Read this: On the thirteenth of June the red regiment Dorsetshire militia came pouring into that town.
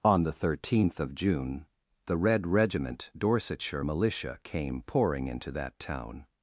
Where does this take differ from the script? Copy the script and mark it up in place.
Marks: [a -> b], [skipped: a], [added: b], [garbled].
On the thirteenth of June the red regiment Dorsetshire militia came pouring into that town.